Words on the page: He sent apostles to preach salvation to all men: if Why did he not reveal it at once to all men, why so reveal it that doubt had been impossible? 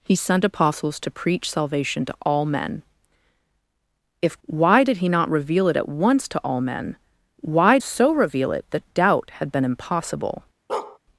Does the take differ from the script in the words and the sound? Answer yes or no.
yes